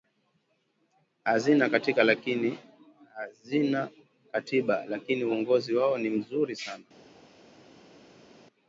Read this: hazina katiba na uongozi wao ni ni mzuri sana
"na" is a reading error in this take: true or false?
true